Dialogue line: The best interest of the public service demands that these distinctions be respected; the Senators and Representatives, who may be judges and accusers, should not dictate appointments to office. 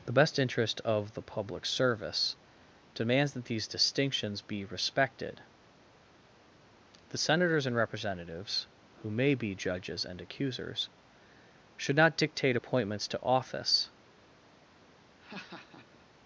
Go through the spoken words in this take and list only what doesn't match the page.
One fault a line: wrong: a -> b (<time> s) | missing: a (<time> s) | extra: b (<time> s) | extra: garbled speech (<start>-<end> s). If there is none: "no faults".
no faults